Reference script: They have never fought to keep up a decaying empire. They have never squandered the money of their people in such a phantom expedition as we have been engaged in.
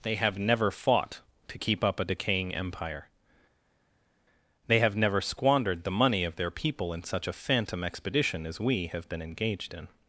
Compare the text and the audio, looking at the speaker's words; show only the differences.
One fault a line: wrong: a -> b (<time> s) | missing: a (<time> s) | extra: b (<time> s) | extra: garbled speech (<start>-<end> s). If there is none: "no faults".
no faults